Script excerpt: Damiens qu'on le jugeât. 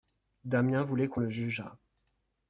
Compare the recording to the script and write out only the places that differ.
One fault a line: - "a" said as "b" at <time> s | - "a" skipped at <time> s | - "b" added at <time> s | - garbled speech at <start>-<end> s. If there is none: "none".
- "voulait" added at 0.8 s